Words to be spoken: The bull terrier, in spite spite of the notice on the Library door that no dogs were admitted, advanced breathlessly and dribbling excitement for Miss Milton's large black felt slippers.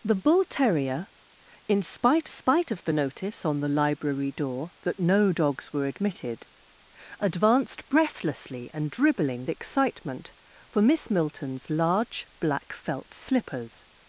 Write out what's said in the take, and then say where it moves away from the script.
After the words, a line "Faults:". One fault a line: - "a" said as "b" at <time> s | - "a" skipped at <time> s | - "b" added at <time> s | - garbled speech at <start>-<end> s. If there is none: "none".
The bull terrier, in spite spite of the notice on the Library door that no dogs were admitted, advanced breathlessly and dribbling excitement for Miss Milton's large black felt slippers.
Faults:
none